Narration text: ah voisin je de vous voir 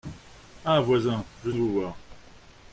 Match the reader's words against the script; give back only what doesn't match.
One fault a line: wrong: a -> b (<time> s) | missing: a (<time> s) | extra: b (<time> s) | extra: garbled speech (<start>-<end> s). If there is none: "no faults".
no faults